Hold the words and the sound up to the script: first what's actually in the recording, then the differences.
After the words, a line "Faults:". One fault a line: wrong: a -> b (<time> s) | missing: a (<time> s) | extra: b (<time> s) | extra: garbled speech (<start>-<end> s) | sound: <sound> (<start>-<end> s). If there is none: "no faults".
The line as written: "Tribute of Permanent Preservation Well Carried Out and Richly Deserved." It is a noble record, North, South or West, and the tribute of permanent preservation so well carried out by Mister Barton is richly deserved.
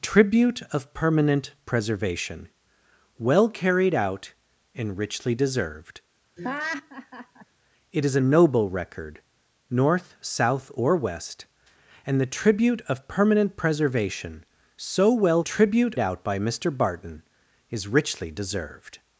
"Tribute of Permanent Preservation Well Carried Out and Richly Deserved." It is a noble record, North, South or West, and the tribute of permanent preservation so well tribute out by Mister Barton is richly deserved.
Faults:
sound: laugh (6.4-7.5 s)
wrong: carried -> tribute (15.4 s)